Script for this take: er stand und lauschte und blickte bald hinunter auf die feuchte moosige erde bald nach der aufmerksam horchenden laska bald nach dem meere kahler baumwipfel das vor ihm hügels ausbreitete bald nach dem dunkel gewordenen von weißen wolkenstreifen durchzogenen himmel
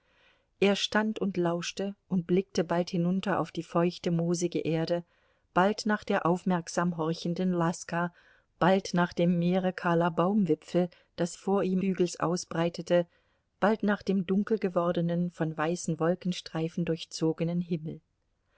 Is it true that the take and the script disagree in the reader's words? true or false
false